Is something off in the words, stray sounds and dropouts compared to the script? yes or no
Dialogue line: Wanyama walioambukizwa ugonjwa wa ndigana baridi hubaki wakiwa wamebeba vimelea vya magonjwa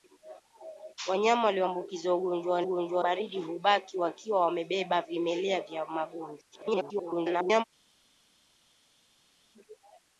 yes